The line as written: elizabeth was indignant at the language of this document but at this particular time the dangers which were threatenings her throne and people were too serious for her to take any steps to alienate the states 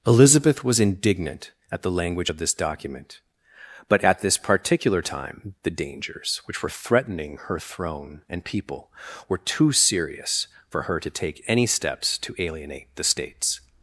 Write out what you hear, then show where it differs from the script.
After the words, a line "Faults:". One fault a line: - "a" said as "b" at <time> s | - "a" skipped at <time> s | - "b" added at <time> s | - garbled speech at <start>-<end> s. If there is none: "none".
elizabeth was indignant at the language of this document but at this particular time the dangers which were threatening her throne and people were too serious for her to take any steps to alienate the states
Faults:
- "threatenings" said as "threatening" at 6.7 s